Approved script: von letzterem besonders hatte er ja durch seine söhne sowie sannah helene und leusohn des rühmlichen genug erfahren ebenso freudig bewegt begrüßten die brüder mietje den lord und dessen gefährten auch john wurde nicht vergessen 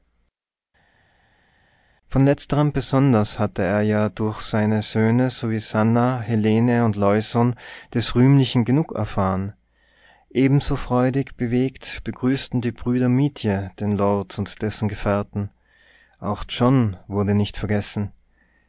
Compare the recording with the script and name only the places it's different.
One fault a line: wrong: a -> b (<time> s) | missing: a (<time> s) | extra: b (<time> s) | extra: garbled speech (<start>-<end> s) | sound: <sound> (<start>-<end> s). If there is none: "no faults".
no faults